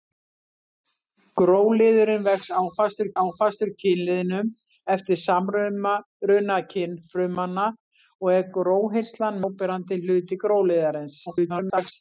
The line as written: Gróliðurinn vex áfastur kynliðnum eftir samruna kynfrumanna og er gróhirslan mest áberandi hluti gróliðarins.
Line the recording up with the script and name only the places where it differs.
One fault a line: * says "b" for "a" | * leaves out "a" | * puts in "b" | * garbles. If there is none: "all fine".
* puts in "áfastur"
* leaves out "mest"
* garbles